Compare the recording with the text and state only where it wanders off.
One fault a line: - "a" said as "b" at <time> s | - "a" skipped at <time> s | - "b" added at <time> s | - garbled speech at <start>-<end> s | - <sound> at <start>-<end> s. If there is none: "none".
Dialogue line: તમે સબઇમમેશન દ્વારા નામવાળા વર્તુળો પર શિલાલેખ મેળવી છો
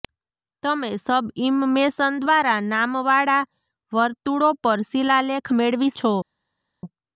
none